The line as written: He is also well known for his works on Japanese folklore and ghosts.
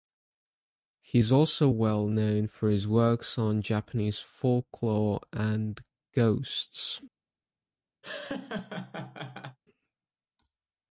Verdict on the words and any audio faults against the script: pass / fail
fail